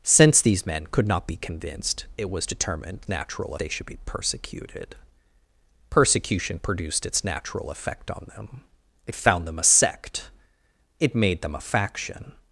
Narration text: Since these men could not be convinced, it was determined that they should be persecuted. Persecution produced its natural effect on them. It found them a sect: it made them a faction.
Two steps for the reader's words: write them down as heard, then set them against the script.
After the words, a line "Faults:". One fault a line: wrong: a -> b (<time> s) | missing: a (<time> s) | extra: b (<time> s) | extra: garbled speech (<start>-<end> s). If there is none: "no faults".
Since these men could not be convinced, it was determined natural they should be persecuted. Persecution produced its natural effect on them. It found them a sect: it made them a faction.
Faults:
wrong: that -> natural (3.1 s)